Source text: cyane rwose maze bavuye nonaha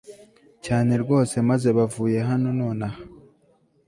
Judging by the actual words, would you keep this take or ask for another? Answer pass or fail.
fail